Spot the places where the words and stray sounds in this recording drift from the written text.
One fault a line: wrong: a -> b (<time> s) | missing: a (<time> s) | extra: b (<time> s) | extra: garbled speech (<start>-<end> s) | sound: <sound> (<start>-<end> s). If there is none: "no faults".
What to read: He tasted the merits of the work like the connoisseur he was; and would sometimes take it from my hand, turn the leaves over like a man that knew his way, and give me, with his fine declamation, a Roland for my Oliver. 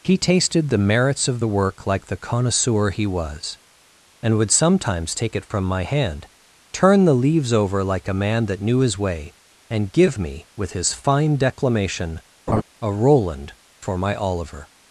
sound: laugh (12.5-12.6 s)